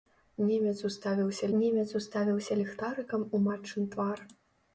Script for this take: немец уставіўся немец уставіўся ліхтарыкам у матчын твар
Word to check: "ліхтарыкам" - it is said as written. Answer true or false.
true